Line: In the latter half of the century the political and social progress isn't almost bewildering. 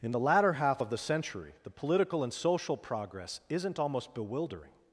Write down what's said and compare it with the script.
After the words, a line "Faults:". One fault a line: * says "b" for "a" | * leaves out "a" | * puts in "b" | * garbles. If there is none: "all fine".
In the latter half of the century the political and social progress isn't almost bewildering.
Faults:
all fine